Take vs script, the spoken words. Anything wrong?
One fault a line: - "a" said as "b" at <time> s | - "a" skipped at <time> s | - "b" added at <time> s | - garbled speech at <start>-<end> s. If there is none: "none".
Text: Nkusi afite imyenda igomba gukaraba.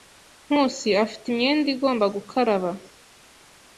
none